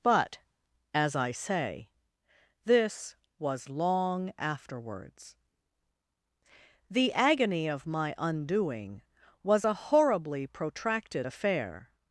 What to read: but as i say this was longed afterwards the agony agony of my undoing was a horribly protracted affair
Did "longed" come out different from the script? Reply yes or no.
yes